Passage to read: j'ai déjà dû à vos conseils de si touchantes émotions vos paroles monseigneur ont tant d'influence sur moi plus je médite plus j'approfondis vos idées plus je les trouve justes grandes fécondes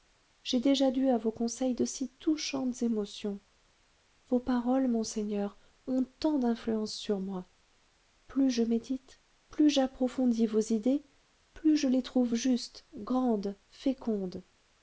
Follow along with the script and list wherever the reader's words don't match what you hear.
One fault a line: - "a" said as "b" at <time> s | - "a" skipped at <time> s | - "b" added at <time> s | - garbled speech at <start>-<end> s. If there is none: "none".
none